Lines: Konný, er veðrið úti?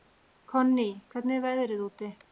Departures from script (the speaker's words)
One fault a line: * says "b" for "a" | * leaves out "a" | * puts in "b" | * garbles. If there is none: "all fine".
* puts in "hvernig"